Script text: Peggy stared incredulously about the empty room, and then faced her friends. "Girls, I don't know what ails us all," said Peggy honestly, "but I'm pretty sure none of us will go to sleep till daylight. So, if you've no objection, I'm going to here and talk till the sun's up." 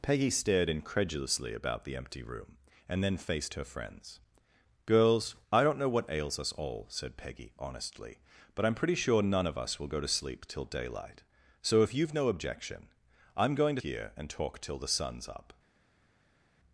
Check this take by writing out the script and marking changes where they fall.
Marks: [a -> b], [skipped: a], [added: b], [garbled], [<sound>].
Peggy stared incredulously about the empty room, and then faced her friends. "Girls, I don't know what ails us all," said Peggy honestly, "but I'm pretty sure none of us will go to sleep till daylight. So, if you've no objection, I'm going to here and talk till the sun's up."